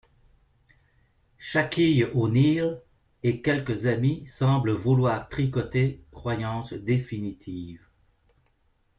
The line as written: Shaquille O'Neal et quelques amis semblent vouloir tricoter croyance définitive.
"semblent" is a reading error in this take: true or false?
false